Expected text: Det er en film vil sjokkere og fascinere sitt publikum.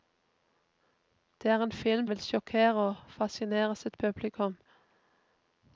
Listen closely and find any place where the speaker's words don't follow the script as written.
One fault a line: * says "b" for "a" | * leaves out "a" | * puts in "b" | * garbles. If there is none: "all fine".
all fine